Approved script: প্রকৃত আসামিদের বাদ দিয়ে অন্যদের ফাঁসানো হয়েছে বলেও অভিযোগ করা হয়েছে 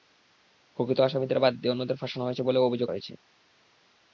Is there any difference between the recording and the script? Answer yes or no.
yes